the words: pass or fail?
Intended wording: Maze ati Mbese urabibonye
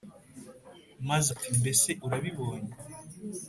pass